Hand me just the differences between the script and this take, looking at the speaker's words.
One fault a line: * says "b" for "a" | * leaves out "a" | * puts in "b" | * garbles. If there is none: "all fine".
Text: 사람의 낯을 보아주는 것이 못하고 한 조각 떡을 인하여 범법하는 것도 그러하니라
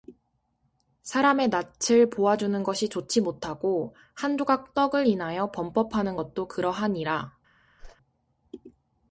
* puts in "좋지"